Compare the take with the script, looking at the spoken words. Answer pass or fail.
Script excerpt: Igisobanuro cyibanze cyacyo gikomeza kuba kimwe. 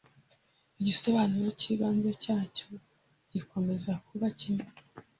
pass